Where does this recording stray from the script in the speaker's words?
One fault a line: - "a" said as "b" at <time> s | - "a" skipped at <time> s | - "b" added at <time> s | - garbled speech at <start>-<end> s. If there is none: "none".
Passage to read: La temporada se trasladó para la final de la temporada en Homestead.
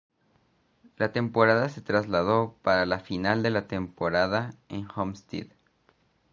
none